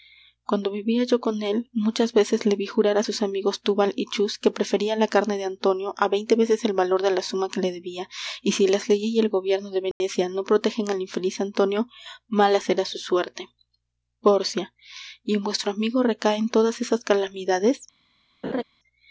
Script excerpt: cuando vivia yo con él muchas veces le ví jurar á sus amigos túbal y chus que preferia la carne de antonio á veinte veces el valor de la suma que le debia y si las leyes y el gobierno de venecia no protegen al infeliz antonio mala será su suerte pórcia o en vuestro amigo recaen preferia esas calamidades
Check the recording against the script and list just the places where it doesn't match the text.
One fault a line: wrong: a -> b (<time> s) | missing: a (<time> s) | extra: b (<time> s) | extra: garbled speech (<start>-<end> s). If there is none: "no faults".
wrong: o -> y (15.2 s)
wrong: preferia -> todas (16.5 s)